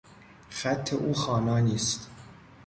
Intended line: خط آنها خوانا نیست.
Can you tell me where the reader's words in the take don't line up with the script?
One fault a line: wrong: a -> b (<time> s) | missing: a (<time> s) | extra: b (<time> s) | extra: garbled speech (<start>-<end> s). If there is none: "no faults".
wrong: آنها -> او (0.9 s)